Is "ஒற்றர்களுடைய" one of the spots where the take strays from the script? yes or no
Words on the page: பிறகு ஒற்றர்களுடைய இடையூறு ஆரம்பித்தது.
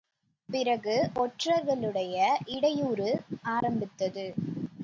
no